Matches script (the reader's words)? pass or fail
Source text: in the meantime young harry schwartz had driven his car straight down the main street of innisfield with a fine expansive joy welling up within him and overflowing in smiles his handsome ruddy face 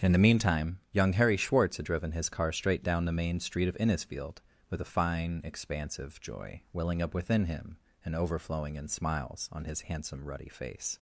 fail